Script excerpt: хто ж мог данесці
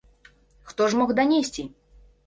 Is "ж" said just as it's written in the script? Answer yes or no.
yes